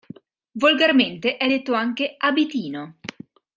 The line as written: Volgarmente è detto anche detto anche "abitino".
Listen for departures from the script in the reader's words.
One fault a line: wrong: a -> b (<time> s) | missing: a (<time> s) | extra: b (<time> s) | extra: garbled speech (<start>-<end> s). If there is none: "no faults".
missing: detto anche (2.1 s)